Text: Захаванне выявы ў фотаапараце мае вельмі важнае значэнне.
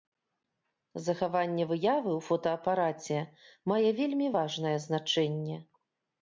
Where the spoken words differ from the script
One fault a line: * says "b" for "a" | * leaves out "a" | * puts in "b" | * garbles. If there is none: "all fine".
all fine